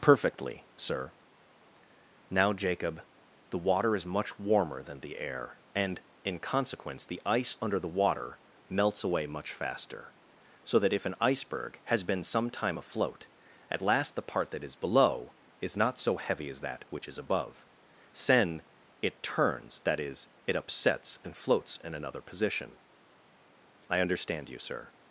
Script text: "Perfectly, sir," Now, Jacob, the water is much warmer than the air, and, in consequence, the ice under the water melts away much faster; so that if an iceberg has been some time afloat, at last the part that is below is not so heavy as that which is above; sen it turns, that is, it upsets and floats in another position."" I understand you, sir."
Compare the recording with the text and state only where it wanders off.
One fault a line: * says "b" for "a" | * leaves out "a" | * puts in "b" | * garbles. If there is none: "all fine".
all fine